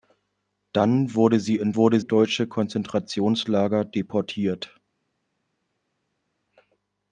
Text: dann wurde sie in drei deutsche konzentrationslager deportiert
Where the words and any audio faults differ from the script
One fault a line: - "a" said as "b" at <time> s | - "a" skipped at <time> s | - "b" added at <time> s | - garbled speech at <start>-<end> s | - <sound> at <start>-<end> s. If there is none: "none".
- "drei" said as "wurde" at 1.7 s